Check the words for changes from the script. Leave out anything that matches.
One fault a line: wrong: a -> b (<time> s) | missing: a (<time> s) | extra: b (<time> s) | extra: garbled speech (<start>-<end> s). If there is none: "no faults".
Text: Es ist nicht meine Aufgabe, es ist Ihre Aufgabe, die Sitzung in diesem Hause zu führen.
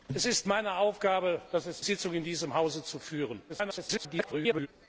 missing: nicht (0.5 s)
missing: Ihre Aufgabe die (1.8 s)
extra: garbled speech (3.5-4.7 s)